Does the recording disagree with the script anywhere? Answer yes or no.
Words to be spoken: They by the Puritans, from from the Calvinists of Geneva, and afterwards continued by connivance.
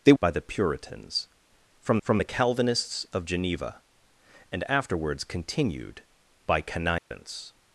no